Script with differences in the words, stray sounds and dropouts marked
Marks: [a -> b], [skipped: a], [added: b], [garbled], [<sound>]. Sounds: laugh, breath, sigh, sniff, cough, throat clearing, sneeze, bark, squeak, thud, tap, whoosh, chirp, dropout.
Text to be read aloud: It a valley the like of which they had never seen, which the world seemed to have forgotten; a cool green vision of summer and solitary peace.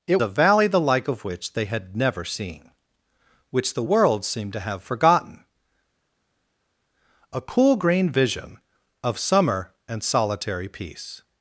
It a valley the like of which they had never seen, which the world seemed to have forgotten; a cool green vision of summer and solitary peace.